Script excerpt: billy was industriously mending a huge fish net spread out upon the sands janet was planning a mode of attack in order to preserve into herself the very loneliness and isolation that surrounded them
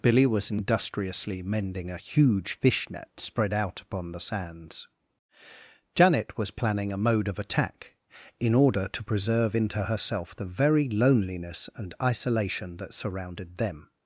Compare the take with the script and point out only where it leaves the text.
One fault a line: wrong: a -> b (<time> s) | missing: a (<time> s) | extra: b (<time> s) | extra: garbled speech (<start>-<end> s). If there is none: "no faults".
no faults